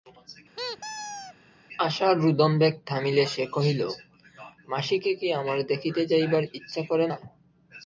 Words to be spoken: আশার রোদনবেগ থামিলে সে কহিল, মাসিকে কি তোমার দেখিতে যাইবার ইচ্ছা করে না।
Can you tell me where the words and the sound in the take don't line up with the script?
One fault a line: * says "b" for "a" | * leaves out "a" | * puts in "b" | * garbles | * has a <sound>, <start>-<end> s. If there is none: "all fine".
* has a squeak, 0.6-1.3 s
* says "আমার" for "তোমার"